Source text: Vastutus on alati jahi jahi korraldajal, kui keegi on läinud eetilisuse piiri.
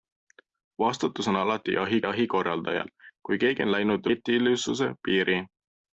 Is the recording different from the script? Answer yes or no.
no